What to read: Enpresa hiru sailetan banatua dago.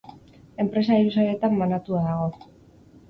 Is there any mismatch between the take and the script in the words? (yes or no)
no